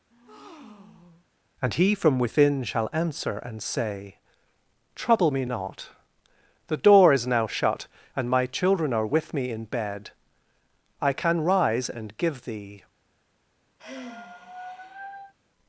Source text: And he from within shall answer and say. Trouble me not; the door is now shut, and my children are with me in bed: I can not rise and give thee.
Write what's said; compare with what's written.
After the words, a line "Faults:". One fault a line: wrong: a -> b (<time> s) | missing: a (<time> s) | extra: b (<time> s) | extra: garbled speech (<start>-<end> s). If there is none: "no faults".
And he from within shall answer and say. Trouble me not; the door is now shut, and my children are with me in bed: I can rise and give thee.
Faults:
missing: not (11.4 s)